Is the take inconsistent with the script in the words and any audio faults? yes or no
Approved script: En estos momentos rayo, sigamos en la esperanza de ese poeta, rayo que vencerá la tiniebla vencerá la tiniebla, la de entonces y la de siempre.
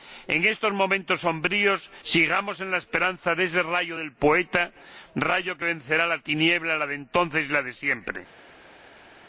yes